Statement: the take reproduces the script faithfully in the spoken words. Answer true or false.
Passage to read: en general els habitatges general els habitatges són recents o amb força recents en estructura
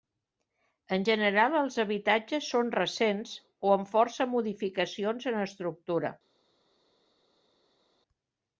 false